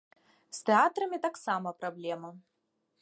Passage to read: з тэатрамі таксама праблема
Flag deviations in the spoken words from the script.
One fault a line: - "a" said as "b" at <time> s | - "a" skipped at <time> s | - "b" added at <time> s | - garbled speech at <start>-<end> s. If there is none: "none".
none